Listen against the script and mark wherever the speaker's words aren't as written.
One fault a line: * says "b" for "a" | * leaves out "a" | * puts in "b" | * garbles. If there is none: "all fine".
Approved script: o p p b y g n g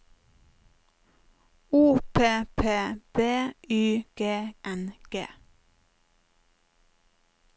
all fine